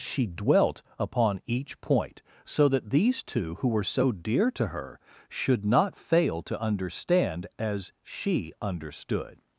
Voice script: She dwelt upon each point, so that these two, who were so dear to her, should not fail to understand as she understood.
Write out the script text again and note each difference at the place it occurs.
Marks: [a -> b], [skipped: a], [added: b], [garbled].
She dwelt upon each point, so that these two, who were so dear to her, should not fail to understand as she understood.